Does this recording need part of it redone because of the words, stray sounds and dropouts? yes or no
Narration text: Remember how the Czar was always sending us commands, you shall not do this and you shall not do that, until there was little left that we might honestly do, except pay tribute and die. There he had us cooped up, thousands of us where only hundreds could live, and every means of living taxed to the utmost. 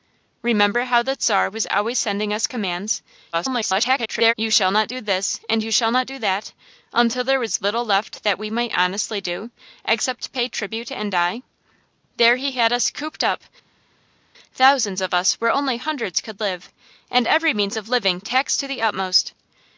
yes